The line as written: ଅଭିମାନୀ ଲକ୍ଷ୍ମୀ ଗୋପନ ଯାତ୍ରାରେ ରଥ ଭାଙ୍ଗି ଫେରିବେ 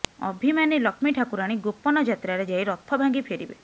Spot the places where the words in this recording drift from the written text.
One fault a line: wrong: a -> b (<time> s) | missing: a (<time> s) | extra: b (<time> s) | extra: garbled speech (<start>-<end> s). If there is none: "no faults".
extra: ଠାକୁରାଣୀ (1.2 s)
extra: ଯାଇ (2.5 s)